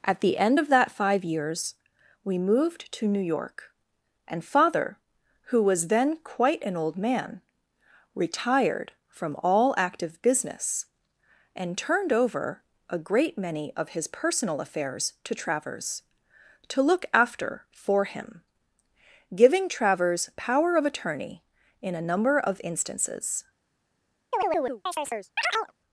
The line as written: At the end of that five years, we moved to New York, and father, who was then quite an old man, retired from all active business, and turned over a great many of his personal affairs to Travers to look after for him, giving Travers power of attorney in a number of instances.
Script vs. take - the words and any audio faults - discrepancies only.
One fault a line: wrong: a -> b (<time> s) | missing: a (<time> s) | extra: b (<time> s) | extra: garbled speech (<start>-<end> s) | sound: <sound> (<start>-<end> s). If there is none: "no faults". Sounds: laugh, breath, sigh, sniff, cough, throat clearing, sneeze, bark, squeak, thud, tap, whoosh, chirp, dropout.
sound: chirp (24.3-25.7 s)